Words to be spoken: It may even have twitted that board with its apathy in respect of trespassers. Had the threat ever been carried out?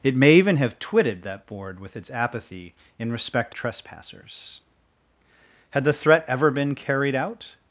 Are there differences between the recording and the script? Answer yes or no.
yes